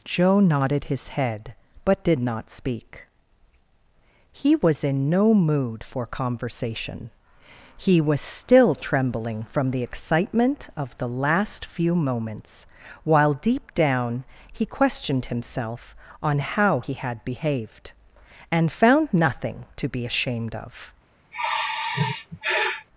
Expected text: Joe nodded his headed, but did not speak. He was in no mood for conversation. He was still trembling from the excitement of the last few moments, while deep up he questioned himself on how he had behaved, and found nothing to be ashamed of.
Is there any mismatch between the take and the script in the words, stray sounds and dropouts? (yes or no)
yes